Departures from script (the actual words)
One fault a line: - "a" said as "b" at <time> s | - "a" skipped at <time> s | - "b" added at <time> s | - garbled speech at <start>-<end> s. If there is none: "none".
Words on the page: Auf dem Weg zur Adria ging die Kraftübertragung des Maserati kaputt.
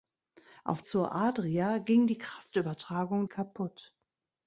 - "dem Weg" skipped at 0.8 s
- "des Maserati" skipped at 3.3 s